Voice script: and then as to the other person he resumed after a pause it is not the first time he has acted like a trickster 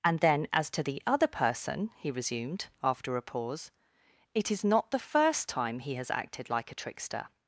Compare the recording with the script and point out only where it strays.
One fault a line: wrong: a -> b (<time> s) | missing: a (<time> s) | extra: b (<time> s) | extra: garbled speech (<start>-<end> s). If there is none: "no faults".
no faults